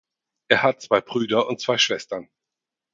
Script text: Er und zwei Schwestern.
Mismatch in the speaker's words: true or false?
true